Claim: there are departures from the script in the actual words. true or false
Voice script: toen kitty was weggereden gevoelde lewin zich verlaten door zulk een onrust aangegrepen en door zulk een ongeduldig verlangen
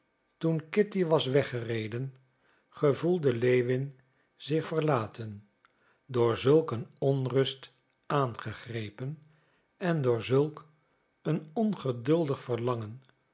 false